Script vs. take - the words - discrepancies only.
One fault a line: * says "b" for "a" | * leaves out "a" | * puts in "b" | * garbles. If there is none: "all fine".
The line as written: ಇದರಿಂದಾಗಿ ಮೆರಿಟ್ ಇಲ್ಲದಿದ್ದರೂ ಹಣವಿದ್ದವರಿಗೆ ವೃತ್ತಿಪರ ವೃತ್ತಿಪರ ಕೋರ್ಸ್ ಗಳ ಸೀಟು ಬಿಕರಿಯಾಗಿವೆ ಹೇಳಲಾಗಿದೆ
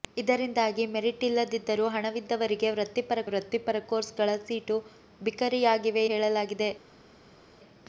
all fine